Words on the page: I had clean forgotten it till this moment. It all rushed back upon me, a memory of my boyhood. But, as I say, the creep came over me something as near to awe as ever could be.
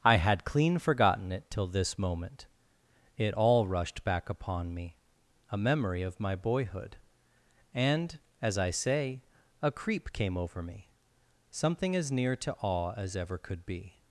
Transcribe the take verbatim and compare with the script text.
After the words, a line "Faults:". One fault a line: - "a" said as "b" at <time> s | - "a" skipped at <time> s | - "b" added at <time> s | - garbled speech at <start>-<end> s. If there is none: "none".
I had clean forgotten it till this moment. It all rushed back upon me, a memory of my boyhood. And, as I say, a creep came over me something as near to awe as ever could be.
Faults:
- "But" said as "And" at 7.7 s
- "the" said as "a" at 9.6 s